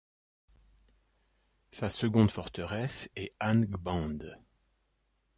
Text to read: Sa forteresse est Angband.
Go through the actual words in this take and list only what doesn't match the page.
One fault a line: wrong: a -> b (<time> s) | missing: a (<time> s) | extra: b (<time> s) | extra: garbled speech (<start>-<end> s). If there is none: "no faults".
extra: seconde (1.9 s)